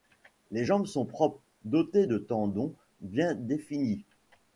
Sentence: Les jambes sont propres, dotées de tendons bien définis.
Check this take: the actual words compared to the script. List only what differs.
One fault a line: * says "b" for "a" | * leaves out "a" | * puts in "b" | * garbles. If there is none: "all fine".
all fine